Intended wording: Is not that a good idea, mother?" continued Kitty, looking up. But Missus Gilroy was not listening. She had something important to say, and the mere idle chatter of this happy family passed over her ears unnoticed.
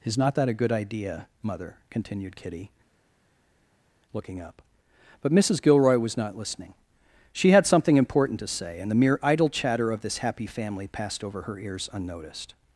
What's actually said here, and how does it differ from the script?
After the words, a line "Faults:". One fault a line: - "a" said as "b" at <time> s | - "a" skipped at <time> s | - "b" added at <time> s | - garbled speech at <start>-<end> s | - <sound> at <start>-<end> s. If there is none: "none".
Is not that a good idea, mother?" continued Kitty, looking up. But Missus Gilroy was not listening. She had something important to say, and the mere idle chatter of this happy family passed over her ears unnoticed.
Faults:
none